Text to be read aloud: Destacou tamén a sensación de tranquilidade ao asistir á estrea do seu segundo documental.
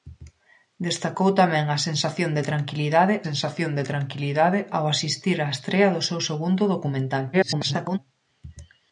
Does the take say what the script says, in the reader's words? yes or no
no